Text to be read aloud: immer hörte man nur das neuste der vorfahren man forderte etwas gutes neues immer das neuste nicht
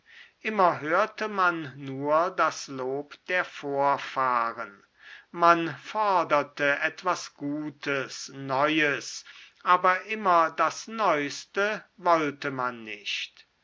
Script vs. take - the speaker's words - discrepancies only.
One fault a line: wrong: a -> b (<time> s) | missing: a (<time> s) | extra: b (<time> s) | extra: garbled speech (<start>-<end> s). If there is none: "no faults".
wrong: neuste -> lob (2.7 s)
extra: aber (9.6 s)
extra: wollte man (12.0 s)